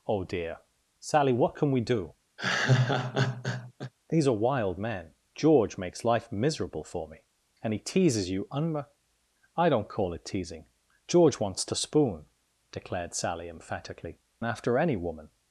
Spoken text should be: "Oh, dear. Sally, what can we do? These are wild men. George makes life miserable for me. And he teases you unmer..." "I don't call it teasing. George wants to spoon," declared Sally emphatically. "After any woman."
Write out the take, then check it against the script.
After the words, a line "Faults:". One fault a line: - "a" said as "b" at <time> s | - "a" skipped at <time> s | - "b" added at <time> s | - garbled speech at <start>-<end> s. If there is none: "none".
"Oh, dear. Sally, what can we do? These are wild men. George makes life miserable for me. And he teases you unmer..." "I don't call it teasing. George wants to spoon," declared Sally emphatically. "After any woman."
Faults:
none